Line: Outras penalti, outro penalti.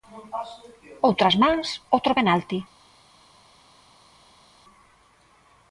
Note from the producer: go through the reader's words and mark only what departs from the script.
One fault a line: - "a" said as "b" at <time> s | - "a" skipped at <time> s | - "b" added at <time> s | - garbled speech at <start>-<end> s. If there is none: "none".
- "penalti" said as "mans" at 1.4 s